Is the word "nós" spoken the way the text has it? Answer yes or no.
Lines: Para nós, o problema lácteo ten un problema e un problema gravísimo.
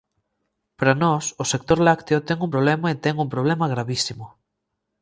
yes